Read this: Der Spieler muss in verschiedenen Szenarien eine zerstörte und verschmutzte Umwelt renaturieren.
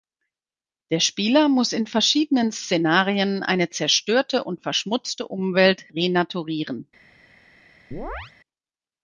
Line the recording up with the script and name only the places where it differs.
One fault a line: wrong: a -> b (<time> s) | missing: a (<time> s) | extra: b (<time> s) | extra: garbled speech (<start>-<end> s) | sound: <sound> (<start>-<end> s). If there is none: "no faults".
sound: chirp (7.9-8.3 s)